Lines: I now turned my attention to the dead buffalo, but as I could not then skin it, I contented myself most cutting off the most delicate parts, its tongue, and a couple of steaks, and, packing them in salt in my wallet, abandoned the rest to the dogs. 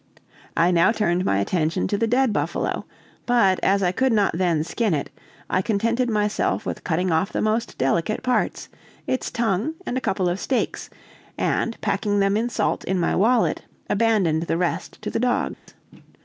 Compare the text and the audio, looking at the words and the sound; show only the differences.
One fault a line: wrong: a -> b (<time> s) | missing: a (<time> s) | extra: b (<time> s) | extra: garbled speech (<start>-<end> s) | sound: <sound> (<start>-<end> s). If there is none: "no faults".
wrong: most -> with (6.6 s)
sound: dropout (15.5-15.7 s)